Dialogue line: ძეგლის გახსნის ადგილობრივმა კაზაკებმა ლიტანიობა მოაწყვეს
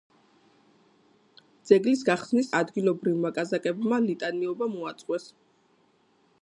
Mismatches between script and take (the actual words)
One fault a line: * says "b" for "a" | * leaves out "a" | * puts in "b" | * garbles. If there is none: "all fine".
all fine